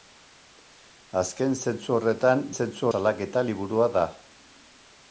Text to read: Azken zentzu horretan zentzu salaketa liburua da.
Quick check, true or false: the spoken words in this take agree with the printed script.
true